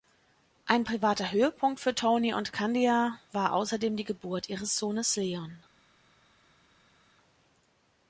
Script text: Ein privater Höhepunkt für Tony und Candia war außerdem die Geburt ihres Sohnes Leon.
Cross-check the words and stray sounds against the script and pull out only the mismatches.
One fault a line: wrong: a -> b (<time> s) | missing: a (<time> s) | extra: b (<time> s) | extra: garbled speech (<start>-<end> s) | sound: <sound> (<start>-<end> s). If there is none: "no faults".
no faults